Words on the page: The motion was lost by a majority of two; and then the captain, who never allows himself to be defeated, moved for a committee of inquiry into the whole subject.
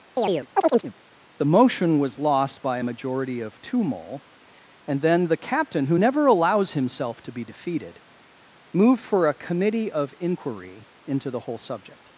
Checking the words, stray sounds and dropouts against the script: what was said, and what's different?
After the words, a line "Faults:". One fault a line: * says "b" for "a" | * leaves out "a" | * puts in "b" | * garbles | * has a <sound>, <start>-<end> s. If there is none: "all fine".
The motion was lost by a majority of two; mole and then the captain, who never allows himself to be defeated, moved for a committee of inquiry into the whole subject.
Faults:
* has a chirp, 0.2-0.9 s
* puts in "mole"